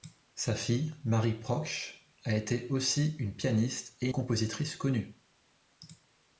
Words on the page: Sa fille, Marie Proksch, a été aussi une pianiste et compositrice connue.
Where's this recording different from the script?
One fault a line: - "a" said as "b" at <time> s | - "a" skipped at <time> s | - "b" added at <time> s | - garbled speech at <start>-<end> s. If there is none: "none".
none